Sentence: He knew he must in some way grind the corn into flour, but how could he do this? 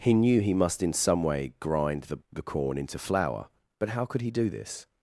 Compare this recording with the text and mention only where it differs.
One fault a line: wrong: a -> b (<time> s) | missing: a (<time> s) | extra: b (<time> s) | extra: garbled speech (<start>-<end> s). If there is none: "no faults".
extra: the (2.3 s)